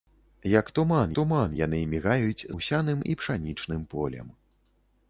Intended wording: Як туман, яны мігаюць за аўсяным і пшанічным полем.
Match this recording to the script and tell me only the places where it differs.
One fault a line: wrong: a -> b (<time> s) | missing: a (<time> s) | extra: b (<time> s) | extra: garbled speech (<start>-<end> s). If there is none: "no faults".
extra: туман (1.2 s)
missing: за (2.5 s)